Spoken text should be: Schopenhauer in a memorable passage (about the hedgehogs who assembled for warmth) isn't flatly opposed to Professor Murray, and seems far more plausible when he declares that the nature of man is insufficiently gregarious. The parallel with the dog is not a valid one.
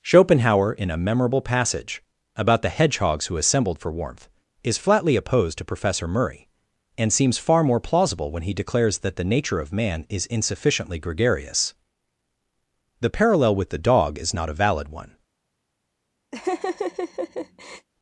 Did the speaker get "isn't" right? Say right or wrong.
wrong